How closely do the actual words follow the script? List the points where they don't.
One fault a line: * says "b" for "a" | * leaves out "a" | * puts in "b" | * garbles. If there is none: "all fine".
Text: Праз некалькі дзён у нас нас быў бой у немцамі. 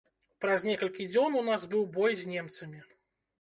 * leaves out "нас"
* says "з" for "у"